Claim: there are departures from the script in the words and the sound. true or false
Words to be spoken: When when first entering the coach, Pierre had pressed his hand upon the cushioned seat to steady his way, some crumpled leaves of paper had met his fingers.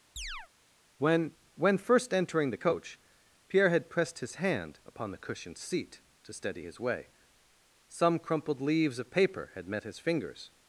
true